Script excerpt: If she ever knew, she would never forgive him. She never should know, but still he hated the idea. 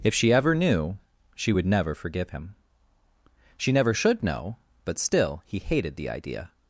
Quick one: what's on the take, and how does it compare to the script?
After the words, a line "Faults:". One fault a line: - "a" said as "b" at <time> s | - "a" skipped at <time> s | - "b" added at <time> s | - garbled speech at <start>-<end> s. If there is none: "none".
If she ever knew, she would never forgive him. She never should know, but still he hated the idea.
Faults:
none